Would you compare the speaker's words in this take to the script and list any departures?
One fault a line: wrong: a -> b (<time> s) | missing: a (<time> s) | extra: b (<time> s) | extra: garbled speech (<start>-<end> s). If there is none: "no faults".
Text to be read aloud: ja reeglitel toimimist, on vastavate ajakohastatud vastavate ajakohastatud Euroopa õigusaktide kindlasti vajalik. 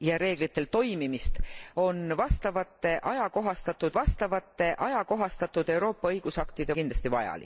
no faults